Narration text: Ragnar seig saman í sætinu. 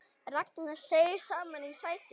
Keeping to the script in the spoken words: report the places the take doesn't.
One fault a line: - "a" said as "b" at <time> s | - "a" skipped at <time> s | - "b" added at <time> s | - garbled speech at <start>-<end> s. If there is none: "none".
none